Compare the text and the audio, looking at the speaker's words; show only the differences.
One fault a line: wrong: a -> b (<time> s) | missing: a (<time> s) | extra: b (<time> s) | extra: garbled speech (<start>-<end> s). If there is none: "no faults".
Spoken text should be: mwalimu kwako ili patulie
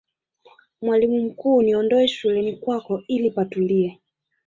extra: mkuu niondoe shuleni (1.2 s)